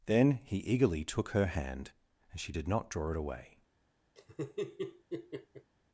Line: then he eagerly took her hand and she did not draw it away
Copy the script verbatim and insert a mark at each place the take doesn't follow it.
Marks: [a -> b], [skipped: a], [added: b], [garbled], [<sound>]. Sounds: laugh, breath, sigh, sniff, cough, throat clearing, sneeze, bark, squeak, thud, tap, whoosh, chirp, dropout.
then he eagerly took her hand and she did not draw it away [laugh]